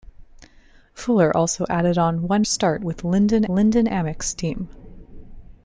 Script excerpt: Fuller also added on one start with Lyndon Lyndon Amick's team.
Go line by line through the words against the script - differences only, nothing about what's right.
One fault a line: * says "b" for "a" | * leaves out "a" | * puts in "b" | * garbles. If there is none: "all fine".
all fine